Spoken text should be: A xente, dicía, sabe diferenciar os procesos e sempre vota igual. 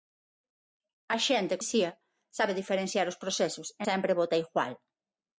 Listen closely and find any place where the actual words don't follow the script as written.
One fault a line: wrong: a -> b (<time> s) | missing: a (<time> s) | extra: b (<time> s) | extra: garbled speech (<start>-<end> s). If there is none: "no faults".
no faults